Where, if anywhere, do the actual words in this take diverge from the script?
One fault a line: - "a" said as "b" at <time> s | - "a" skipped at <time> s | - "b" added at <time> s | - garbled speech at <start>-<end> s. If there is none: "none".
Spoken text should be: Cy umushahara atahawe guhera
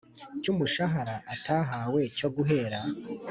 - "cyo" added at 2.2 s